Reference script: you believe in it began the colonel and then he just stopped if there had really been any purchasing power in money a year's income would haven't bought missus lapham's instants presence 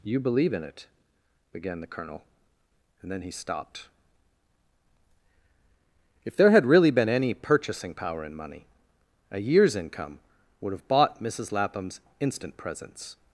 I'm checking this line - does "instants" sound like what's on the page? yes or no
no